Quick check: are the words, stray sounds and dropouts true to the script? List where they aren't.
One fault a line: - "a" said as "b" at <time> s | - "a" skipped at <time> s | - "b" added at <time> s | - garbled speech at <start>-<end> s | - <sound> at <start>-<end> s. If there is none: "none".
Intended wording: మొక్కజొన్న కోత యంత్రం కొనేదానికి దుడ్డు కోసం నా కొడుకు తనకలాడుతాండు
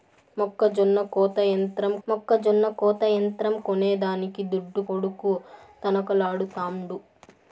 - "మొక్కజొన్న కోత యంత్రం" added at 2.1 s
- "కోసం నా" skipped at 4.8 s